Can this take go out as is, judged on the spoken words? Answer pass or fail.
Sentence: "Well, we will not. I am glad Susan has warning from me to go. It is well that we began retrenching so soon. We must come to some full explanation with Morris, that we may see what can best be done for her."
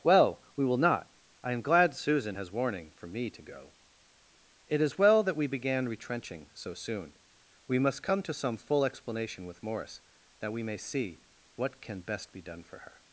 fail